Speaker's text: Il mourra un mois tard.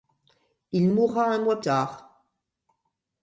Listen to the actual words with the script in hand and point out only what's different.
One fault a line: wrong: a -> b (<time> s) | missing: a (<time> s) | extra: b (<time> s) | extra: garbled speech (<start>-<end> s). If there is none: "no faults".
no faults